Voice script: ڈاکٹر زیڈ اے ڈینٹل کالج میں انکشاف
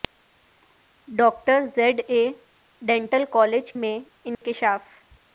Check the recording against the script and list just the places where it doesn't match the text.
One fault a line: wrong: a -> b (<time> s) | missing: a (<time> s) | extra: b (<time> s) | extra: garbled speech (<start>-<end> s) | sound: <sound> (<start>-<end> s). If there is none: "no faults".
sound: dropout (4.3-4.4 s)